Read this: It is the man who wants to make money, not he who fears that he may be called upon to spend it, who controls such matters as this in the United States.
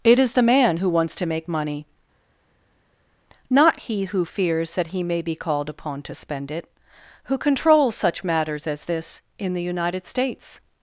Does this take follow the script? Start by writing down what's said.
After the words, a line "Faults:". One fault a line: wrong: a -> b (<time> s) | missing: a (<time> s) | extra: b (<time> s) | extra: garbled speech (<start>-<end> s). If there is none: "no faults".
It is the man who wants to make money, not he who fears that he may be called upon to spend it, who controls such matters as this in the United States.
Faults:
no faults